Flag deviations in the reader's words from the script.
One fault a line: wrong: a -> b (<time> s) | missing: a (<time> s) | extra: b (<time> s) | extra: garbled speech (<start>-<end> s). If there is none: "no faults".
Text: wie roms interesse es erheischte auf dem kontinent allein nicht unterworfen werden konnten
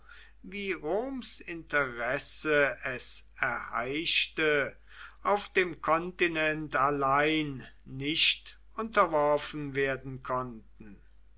no faults